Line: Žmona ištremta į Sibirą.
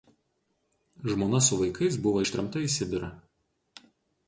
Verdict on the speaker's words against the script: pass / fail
fail